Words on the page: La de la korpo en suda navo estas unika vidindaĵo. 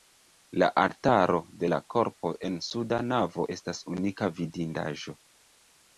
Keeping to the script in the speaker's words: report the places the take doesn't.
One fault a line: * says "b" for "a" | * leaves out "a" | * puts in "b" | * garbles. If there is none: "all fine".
* puts in "altaro"